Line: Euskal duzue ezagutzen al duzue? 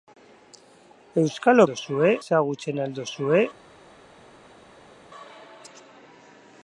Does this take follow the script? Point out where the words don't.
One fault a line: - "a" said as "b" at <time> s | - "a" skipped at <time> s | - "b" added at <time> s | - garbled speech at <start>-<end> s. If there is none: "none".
none